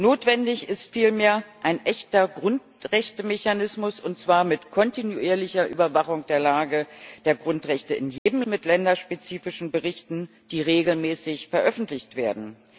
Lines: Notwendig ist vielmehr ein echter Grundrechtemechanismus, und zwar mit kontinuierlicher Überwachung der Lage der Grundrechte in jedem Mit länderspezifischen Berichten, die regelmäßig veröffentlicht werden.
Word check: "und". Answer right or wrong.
right